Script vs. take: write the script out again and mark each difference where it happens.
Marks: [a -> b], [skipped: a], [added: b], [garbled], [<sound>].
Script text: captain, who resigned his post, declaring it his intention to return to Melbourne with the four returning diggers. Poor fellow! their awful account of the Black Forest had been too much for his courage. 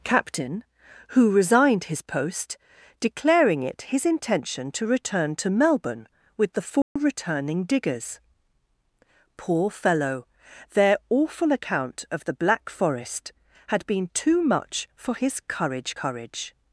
captain, who resigned his post, declaring it his intention to return to Melbourne with the four [dropout] returning diggers. Poor fellow! their awful account of the Black Forest had been too much for his courage. [added: courage]